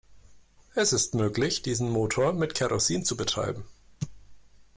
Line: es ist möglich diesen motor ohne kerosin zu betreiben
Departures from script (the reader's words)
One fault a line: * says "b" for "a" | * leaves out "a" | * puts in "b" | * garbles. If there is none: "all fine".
* says "mit" for "ohne"